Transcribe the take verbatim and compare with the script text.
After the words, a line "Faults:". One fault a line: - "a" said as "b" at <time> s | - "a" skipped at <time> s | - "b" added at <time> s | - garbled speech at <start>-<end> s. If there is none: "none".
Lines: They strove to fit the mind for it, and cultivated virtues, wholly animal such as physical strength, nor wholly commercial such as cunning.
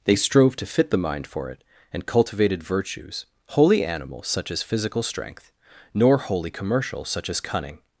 They strove to fit the mind for it, and cultivated virtues, wholly animal such as physical strength, nor wholly commercial such as cunning.
Faults:
none